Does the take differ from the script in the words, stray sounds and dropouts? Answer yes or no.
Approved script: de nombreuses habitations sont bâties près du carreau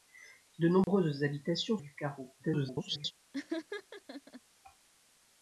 yes